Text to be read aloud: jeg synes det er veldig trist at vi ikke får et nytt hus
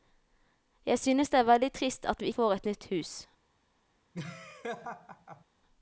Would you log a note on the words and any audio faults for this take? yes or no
yes